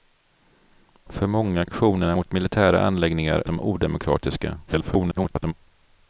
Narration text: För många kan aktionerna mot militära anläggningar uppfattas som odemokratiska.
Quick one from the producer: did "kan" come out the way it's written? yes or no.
no